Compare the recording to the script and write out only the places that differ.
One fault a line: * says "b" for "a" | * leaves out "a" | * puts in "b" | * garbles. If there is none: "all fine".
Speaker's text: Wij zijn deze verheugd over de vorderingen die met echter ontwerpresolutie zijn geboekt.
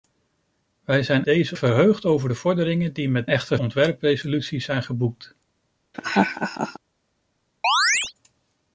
all fine